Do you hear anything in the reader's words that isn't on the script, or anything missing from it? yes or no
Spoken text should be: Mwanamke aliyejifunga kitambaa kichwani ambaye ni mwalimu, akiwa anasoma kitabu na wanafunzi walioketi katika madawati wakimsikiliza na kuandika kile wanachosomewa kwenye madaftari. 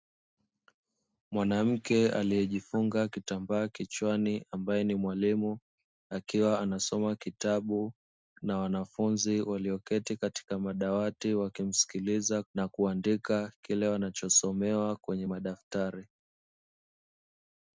no